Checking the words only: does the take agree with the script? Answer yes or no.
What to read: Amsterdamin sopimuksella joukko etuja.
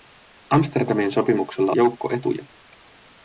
yes